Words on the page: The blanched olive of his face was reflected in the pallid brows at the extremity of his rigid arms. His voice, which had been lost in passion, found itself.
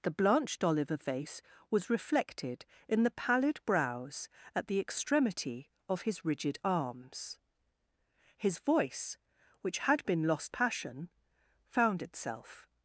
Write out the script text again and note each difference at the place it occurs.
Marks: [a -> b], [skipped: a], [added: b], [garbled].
The blanched olive of [skipped: his] face was reflected in the pallid brows at the extremity of his rigid arms. His voice, which had been lost [skipped: in] passion, found itself.